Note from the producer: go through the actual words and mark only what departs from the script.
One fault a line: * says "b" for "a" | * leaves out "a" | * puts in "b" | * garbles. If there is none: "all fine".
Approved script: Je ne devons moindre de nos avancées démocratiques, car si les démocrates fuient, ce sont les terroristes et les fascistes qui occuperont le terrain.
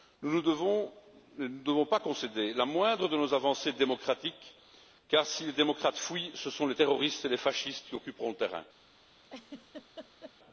* says "Nous" for "Je"
* puts in "pas concéder la"